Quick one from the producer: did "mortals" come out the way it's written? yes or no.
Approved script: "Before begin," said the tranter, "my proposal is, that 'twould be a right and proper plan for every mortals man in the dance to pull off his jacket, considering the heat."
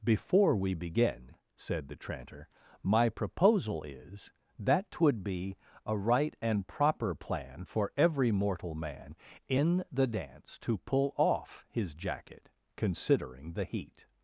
no